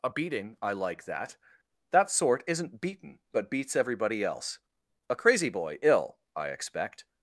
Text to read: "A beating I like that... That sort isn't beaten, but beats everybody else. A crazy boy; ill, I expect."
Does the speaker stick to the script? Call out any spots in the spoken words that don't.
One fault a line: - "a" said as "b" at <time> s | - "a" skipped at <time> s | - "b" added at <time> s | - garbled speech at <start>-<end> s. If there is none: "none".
none